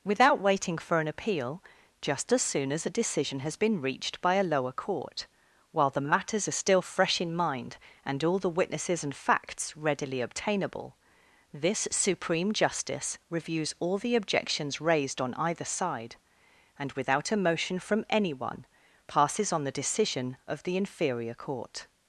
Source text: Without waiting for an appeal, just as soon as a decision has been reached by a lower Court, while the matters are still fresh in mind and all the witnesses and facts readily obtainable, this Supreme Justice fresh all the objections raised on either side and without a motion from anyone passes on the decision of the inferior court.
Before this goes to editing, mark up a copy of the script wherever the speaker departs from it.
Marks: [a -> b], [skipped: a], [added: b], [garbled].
Without waiting for an appeal, just as soon as a decision has been reached by a lower Court, while the matters are still fresh in mind and all the witnesses and facts readily obtainable, this Supreme Justice [fresh -> reviews] all the objections raised on either side and without a motion from anyone passes on the decision of the inferior court.